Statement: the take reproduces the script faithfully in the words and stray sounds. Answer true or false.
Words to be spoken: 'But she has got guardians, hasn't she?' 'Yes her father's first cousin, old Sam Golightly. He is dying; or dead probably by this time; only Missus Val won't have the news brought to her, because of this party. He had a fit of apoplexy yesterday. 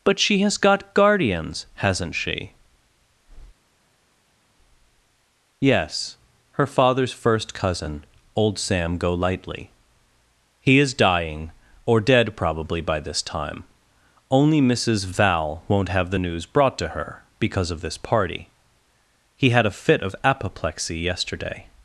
true